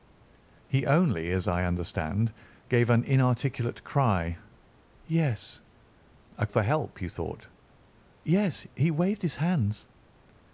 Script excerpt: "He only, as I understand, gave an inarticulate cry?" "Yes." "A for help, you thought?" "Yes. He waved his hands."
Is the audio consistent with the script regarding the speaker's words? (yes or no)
yes